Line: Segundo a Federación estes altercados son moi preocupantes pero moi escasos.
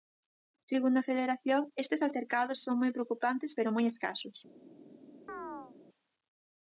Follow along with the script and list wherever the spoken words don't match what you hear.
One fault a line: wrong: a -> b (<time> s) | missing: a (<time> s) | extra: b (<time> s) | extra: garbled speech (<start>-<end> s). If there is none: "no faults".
no faults